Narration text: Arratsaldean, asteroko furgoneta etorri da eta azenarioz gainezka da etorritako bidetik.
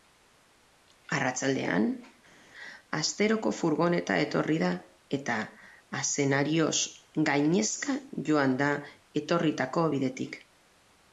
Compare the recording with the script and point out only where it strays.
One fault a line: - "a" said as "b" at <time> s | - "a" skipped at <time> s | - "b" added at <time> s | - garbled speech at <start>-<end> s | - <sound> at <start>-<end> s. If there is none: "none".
- "joan" added at 8.3 s